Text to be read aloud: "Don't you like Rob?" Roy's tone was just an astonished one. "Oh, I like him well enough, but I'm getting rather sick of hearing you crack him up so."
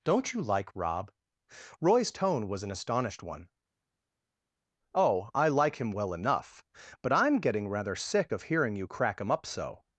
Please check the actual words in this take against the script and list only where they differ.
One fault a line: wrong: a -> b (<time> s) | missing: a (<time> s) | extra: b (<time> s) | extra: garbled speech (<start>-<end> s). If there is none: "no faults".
missing: just (2.6 s)